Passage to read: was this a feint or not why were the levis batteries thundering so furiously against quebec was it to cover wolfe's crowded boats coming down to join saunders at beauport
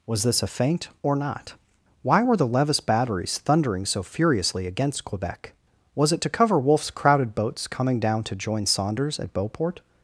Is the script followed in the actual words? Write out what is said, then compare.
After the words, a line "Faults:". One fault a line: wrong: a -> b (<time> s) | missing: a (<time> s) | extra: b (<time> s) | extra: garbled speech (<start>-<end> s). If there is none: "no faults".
was this a feint or not why were the levis batteries thundering so furiously against quebec was it to cover wolfe's crowded boats coming down to join saunders at beauport
Faults:
no faults